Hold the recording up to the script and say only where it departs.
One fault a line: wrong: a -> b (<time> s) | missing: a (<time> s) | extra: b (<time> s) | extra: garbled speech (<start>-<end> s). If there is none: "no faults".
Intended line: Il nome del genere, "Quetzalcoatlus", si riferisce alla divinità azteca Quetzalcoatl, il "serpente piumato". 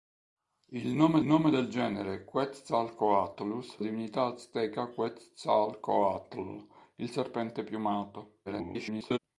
extra: nome (1.3 s)
missing: si riferisce alla (3.8 s)
extra: garbled speech (8.5-9.2 s)